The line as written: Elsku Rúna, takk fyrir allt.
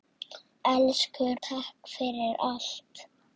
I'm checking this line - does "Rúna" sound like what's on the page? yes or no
no